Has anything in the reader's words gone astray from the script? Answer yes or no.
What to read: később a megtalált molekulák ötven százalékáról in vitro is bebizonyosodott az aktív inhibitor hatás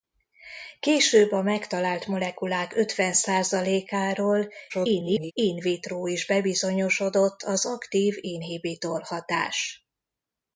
yes